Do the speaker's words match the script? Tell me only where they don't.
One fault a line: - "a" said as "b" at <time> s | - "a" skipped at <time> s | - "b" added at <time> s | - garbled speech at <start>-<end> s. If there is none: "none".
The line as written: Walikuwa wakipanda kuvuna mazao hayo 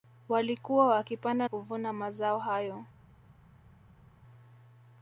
none